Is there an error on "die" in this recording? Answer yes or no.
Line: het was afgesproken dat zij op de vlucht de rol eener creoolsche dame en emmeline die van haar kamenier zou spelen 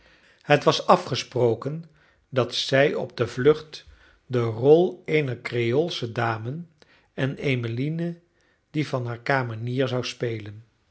no